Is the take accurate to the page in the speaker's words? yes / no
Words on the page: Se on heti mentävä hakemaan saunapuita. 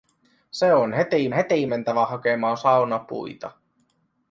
no